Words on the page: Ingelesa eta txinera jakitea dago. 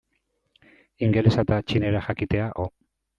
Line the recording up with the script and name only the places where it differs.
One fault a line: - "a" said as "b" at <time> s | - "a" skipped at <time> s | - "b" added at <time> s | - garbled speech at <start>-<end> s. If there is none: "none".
none